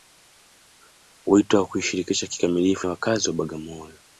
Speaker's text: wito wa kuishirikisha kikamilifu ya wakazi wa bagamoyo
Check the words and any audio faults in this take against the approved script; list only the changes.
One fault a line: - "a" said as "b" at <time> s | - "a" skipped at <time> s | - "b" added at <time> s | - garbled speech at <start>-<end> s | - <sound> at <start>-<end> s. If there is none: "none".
none